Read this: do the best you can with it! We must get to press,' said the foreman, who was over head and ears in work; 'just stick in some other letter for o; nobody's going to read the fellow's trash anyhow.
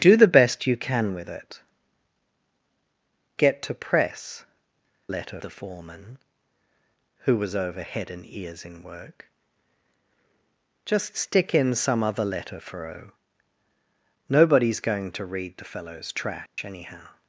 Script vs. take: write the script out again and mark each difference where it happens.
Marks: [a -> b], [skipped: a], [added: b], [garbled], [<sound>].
do the best you can with it! [skipped: We must] get to press,' [said -> letter] the foreman, who was over head and ears in work; 'just stick in some other letter for o; nobody's going to read the fellow's trash [dropout] anyhow.